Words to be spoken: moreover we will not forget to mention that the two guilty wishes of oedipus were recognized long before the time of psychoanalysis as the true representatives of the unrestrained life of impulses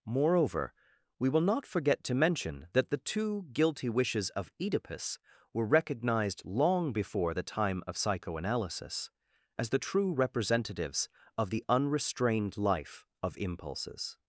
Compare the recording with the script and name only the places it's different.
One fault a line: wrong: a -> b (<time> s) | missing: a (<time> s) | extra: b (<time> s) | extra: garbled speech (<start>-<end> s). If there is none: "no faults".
no faults